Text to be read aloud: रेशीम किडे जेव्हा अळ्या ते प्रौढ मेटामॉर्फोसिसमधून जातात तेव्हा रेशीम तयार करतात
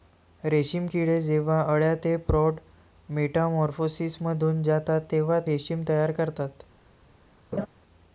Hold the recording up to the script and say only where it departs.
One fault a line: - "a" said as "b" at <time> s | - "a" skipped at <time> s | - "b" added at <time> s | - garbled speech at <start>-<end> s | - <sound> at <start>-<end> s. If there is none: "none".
- laugh at 7.5-7.7 s